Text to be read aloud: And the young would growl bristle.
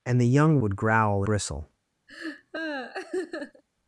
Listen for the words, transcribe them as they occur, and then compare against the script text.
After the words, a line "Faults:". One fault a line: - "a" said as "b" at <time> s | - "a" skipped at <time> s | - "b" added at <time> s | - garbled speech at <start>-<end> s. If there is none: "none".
And the young would growl bristle.
Faults:
none